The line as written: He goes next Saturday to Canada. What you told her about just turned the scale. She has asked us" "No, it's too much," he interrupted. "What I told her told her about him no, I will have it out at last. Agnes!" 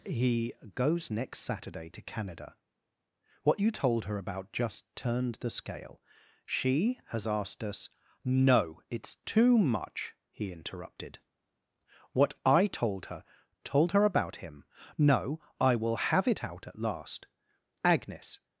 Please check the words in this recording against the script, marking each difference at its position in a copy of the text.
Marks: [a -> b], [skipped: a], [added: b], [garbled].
He goes next Saturday to Canada. What you told her about just turned the scale. She has asked us" "No, it's too much," he interrupted. "What I told her told her about him no, I will have it out at last. Agnes!"